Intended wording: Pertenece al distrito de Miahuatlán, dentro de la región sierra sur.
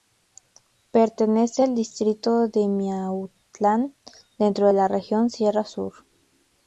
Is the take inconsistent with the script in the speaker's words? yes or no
no